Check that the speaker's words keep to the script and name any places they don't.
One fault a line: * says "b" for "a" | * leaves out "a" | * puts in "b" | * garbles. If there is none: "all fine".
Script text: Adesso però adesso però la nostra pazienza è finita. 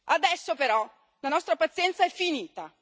* leaves out "adesso però"